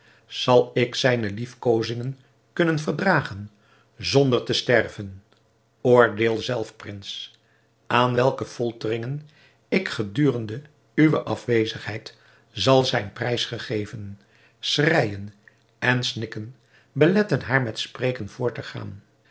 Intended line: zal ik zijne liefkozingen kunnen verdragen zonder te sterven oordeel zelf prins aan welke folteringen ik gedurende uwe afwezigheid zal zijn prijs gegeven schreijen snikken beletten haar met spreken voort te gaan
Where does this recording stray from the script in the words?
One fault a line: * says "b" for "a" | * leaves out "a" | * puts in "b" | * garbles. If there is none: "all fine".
* puts in "en"